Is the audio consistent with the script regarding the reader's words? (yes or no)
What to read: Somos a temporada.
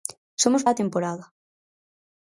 yes